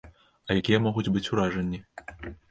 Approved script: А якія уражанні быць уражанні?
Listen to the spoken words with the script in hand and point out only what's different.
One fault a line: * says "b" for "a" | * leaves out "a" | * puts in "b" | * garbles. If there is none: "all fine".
* says "могуць" for "уражанні"